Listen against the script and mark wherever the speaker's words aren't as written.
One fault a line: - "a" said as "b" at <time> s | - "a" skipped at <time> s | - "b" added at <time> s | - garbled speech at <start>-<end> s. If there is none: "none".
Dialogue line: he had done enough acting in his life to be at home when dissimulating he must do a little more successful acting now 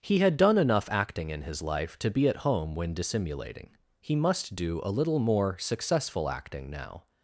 none